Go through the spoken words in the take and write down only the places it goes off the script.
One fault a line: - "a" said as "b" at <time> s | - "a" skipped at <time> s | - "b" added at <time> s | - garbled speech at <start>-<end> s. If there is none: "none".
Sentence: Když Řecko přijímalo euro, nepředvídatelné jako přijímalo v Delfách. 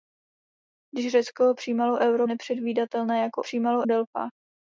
none